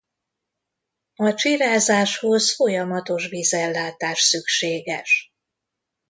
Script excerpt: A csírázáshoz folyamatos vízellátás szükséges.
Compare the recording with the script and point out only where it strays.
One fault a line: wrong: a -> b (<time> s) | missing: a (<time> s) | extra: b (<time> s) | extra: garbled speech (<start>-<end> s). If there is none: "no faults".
no faults